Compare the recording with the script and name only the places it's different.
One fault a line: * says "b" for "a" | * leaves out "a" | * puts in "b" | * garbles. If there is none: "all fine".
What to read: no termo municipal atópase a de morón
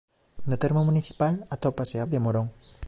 all fine